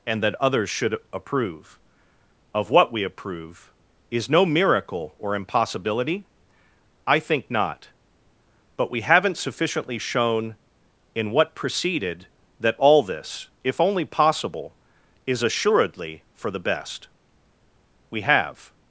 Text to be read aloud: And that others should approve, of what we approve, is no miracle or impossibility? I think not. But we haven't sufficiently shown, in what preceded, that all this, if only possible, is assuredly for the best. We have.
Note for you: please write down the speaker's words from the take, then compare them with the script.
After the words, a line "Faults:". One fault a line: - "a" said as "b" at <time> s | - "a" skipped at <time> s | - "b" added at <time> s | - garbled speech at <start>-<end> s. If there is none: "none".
And that others should approve, of what we approve, is no miracle or impossibility? I think not. But we haven't sufficiently shown, in what preceded, that all this, if only possible, is assuredly for the best. We have.
Faults:
none